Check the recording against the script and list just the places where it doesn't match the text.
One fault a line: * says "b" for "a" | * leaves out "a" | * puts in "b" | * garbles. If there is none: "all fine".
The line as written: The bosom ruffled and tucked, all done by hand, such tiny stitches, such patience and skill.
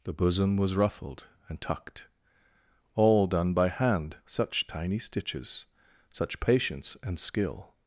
* puts in "was"